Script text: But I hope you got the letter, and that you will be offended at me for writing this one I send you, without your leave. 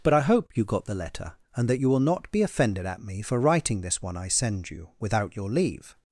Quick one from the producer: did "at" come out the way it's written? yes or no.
yes